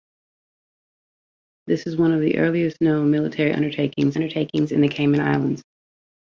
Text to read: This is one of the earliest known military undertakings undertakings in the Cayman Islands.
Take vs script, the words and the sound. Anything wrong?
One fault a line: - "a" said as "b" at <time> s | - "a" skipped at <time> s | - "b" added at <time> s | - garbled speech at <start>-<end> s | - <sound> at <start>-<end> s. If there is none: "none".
none